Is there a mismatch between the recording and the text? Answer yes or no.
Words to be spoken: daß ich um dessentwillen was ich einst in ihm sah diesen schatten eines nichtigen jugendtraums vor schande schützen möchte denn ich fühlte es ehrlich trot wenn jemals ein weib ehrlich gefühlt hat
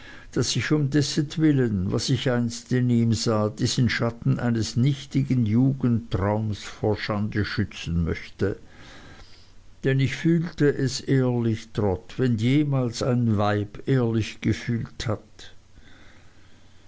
no